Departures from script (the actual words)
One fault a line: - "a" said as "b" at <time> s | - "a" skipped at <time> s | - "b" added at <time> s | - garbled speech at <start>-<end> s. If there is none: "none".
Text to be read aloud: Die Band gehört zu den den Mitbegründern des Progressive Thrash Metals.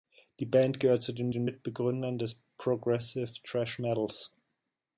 none